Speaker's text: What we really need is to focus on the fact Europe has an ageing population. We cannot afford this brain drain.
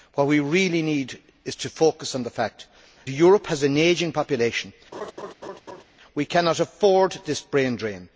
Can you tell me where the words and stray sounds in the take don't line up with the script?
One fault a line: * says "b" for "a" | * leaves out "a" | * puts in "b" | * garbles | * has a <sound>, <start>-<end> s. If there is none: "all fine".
* has a laugh, 4.9-5.8 s